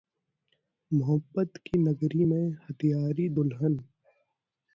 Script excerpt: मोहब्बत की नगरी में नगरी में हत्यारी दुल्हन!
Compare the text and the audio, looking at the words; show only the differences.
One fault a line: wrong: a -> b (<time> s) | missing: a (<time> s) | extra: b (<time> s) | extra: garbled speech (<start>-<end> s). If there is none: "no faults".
missing: नगरी में (2.5 s)